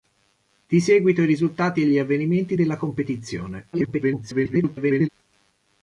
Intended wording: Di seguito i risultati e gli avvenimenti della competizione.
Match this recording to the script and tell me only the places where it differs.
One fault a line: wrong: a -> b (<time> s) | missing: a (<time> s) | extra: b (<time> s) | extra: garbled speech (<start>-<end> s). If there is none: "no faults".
extra: garbled speech (3.7-5.1 s)